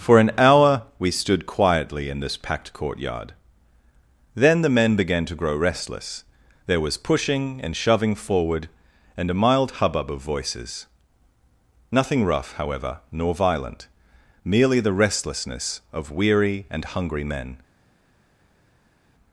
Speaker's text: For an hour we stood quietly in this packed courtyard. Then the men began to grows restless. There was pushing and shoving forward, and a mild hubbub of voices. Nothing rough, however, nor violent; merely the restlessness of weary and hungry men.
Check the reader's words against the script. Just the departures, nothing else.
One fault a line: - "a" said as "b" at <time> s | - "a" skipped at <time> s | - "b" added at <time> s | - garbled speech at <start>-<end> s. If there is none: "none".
- "grows" said as "grow" at 5.3 s